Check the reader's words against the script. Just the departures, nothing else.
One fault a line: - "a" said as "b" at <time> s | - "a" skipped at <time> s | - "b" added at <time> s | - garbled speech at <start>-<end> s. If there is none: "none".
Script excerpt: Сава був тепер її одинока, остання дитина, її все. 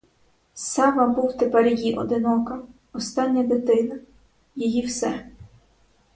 none